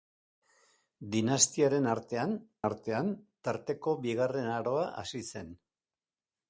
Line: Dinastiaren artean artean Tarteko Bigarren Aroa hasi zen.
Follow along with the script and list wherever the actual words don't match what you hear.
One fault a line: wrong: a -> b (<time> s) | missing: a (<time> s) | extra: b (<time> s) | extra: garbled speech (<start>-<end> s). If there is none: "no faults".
no faults